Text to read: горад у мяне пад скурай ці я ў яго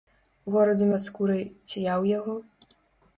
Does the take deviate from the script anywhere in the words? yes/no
yes